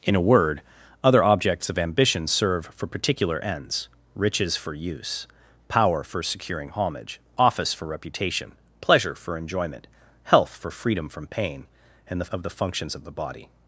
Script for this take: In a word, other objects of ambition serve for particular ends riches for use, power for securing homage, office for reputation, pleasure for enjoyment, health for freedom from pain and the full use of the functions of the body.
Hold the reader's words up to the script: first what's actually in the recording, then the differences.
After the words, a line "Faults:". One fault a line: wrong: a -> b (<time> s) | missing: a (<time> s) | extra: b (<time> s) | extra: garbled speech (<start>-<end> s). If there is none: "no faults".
In a word, other objects of ambition serve for particular ends riches for use, power for securing homage, office for reputation, pleasure for enjoyment, health for freedom from pain and the of the functions of the body.
Faults:
missing: full use (12.2 s)